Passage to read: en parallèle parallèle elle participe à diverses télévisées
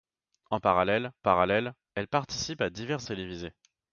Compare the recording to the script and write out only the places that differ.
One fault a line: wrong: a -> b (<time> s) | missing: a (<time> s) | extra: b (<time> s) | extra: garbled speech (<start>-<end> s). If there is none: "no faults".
no faults